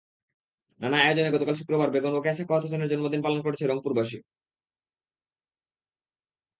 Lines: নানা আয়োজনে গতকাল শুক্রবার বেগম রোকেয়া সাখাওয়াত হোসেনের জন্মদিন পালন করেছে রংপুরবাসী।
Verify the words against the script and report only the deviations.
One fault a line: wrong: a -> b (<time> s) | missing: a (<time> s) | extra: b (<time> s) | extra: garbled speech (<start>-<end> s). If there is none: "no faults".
no faults